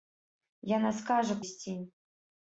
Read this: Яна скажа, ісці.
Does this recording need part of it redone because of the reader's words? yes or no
no